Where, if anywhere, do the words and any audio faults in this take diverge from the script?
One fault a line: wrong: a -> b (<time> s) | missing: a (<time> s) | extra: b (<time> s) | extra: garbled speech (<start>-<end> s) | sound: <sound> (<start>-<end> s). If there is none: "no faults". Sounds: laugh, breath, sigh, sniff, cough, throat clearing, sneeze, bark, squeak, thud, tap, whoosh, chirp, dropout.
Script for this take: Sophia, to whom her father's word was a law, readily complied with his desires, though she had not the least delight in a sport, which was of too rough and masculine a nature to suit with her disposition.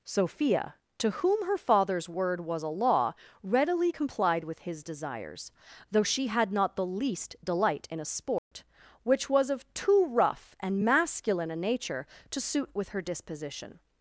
sound: dropout (8.4-8.5 s)